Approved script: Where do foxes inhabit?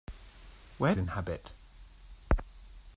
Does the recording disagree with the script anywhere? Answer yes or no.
yes